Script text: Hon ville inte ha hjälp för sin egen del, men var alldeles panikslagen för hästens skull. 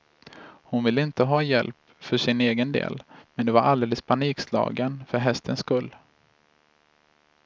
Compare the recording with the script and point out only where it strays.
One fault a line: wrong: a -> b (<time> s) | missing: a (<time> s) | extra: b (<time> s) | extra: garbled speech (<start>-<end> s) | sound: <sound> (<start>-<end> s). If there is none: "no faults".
no faults